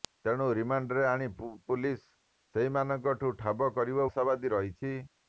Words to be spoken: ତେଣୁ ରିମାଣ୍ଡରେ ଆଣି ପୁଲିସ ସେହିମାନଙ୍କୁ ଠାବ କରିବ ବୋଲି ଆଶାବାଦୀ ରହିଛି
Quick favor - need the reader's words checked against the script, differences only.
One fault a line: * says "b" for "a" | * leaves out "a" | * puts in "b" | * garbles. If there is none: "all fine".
* leaves out "ବୋଲି"